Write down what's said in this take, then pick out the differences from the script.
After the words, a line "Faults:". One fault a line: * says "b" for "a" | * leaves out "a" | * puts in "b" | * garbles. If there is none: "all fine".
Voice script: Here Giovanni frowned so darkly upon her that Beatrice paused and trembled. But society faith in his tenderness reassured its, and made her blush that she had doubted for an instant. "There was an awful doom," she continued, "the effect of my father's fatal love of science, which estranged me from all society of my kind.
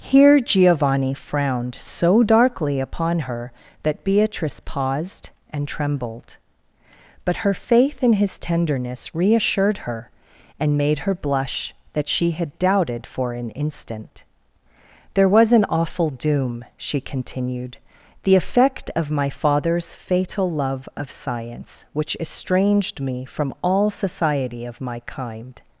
Here Giovanni frowned so darkly upon her that Beatrice paused and trembled. But her faith in his tenderness reassured her, and made her blush that she had doubted for an instant. "There was an awful doom," she continued, "the effect of my father's fatal love of science, which estranged me from all society of my kind.
Faults:
* says "her" for "society"
* says "her" for "its"